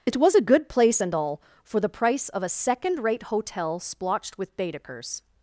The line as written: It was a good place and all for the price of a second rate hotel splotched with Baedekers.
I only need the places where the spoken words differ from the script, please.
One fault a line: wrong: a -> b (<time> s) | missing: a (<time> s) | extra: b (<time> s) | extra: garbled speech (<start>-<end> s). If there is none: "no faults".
no faults